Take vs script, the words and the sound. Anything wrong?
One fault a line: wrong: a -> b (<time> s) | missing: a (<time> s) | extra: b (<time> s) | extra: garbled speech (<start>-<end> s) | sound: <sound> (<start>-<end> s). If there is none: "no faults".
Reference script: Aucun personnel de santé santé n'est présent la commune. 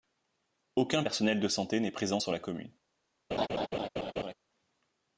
missing: santé (1.8 s)
extra: sur (2.2 s)
sound: laugh (3.3-4.3 s)